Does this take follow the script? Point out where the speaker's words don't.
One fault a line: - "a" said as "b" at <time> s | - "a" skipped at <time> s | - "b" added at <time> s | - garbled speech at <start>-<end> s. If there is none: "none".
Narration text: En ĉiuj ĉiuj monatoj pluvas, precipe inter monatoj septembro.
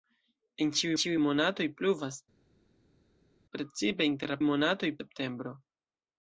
none